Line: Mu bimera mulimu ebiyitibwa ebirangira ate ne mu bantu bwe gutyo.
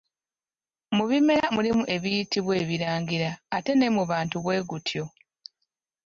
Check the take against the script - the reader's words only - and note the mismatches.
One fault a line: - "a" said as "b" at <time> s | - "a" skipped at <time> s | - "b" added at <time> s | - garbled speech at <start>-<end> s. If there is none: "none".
none